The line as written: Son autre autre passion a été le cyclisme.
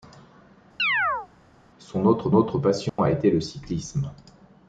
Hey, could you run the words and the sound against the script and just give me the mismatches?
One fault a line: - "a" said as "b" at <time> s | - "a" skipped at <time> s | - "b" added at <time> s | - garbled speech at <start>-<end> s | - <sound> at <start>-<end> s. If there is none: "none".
- chirp at 0.8-1.3 s
- dropout at 2.9-3.0 s